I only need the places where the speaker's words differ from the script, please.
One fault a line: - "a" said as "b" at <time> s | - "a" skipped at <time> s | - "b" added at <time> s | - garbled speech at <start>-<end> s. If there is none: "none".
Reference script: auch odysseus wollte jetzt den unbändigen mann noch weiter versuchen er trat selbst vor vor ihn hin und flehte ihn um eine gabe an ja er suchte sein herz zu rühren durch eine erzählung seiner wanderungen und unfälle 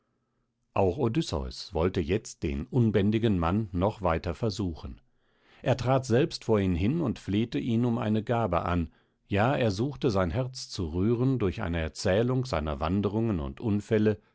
- "vor" skipped at 6.6 s